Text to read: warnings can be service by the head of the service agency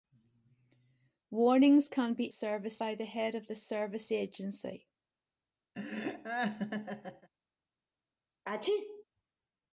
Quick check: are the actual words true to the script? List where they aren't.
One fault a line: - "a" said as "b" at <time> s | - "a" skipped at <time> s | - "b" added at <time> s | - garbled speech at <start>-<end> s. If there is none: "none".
none